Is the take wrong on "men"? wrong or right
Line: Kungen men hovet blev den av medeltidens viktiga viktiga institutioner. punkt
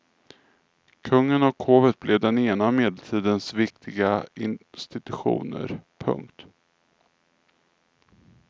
wrong